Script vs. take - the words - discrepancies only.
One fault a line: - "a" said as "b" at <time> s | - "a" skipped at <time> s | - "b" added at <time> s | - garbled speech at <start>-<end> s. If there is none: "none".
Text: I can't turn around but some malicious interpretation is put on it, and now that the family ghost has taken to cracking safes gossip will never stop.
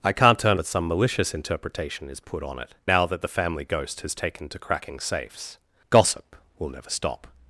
- "around" skipped at 0.6 s
- "and" skipped at 2.7 s